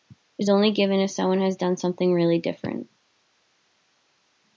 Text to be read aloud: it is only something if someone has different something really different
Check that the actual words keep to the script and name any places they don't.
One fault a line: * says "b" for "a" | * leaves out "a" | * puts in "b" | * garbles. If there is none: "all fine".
* says "given" for "something"
* says "done" for "different"